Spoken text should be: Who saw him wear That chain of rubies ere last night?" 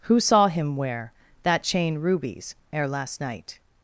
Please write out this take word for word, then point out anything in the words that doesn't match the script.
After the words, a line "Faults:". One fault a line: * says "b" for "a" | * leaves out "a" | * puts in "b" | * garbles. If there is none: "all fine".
Who saw him wear That chain rubies ere last night?"
Faults:
* leaves out "of"